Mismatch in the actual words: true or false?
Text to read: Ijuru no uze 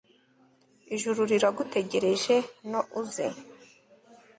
true